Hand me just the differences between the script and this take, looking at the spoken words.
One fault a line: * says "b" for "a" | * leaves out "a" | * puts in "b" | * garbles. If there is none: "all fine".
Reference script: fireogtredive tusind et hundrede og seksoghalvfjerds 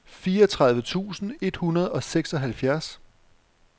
all fine